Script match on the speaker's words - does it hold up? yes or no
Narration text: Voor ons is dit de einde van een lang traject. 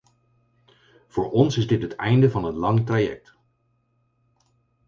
no